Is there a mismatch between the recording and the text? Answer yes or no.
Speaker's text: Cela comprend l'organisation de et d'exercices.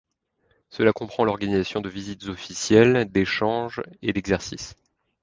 yes